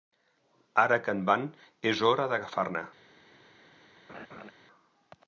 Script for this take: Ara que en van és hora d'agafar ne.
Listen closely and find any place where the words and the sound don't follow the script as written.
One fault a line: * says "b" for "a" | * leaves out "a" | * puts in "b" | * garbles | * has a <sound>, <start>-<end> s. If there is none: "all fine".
* has a laugh, 4.1-4.5 s